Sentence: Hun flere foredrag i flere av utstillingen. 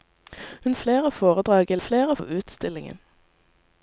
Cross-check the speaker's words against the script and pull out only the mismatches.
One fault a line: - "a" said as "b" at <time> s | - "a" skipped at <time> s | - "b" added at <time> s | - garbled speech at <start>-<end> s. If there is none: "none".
none